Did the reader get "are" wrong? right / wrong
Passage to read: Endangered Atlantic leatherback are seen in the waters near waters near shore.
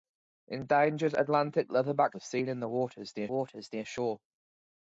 right